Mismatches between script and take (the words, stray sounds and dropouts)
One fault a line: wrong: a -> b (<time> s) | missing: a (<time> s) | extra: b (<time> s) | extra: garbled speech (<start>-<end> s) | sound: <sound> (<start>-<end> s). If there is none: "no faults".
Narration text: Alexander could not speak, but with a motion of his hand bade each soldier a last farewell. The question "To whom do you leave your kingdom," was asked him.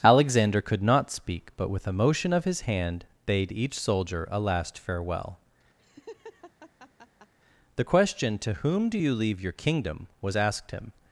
sound: laugh (5.8-7.3 s)